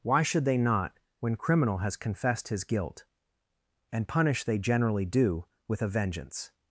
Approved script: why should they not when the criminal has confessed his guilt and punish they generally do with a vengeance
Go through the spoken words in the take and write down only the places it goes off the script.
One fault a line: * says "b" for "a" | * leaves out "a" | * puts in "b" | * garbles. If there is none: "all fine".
* leaves out "the"